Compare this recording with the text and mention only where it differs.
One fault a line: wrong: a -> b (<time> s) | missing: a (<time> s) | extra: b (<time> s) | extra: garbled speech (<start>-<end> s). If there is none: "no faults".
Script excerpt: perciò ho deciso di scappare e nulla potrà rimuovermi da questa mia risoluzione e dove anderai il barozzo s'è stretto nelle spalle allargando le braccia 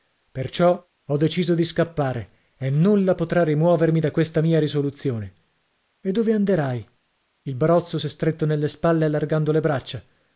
no faults